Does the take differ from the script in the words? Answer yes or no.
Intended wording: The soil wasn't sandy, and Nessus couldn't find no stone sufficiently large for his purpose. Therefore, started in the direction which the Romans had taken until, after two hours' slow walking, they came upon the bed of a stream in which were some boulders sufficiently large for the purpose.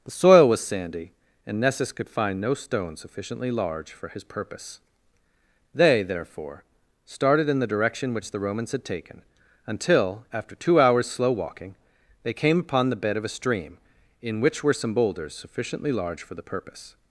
yes